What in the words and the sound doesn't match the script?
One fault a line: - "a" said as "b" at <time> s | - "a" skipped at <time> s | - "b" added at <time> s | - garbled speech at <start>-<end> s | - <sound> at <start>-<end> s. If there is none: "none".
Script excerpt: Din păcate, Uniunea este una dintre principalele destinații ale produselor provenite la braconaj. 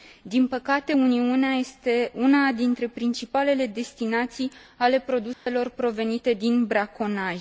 - dropout at 5.3-5.5 s
- "la" said as "din" at 6.3 s